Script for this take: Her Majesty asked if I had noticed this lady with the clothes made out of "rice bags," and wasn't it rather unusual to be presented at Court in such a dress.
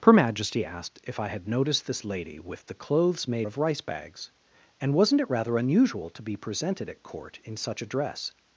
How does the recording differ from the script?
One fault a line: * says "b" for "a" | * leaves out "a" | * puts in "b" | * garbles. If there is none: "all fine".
* leaves out "out"